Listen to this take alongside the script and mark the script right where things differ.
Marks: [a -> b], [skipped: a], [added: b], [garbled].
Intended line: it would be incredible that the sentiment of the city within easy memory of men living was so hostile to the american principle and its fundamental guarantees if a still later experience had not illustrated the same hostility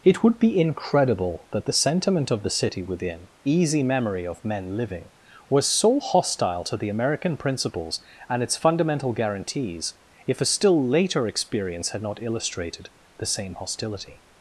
it would be incredible that the sentiment of the city within easy memory of men living was so hostile to the american [principle -> principles] and its fundamental guarantees if a still later experience had not illustrated the same hostility